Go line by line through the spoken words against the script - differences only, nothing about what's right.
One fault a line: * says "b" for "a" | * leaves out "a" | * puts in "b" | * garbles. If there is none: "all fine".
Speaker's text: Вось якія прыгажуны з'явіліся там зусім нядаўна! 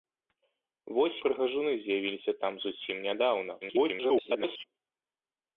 * leaves out "якія"
* garbles